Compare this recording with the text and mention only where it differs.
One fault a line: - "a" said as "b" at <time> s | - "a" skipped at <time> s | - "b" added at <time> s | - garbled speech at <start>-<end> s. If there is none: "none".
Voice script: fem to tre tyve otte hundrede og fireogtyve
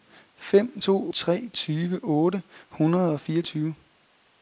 none